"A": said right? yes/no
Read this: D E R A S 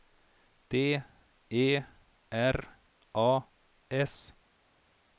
yes